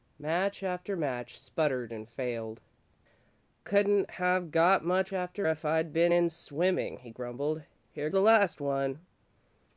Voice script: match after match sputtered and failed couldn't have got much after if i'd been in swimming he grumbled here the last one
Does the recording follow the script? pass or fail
pass